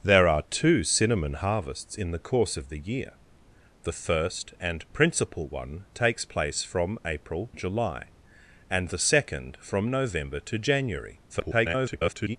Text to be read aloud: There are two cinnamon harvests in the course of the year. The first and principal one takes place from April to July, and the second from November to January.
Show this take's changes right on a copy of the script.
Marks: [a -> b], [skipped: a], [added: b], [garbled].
There are two cinnamon harvests in the course of the year. The first and principal one takes place from April [skipped: to] July, and the second from November to January. [garbled]